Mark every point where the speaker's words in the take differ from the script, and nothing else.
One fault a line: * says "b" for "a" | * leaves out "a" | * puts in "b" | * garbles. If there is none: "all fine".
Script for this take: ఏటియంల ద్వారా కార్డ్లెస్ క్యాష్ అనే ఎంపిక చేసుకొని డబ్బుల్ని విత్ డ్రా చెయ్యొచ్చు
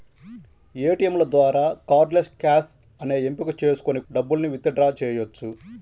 all fine